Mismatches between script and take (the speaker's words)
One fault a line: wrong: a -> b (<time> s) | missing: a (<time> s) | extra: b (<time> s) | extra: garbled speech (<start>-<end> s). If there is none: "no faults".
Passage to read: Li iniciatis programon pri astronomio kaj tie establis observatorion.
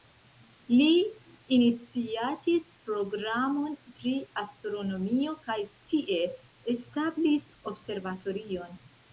no faults